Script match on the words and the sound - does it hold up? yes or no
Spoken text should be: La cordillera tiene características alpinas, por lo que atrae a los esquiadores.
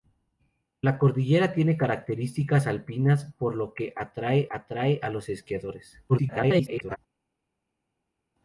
no